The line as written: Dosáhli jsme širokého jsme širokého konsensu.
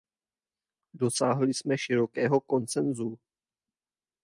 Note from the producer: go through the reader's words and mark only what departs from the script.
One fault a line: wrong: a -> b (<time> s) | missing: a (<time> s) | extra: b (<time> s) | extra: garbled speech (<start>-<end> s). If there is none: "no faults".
missing: jsme širokého (2.4 s)